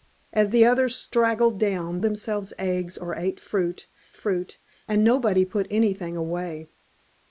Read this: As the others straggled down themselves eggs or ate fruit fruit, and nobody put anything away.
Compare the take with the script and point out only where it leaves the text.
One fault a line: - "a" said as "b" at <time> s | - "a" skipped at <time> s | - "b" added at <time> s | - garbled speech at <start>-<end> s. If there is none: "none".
none